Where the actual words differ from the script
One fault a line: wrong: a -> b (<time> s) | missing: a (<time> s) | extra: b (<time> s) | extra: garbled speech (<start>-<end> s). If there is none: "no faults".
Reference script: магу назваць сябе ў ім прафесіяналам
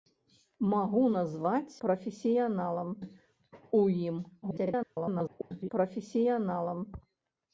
wrong: сябе -> прафесіяналам (1.9 s)
extra: garbled speech (4.4-5.7 s)